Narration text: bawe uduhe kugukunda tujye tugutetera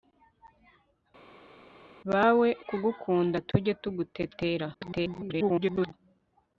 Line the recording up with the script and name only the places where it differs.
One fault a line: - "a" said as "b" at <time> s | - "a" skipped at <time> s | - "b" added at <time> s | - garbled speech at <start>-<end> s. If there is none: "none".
- "uduhe" skipped at 2.5 s
- garbled speech at 4.7-5.9 s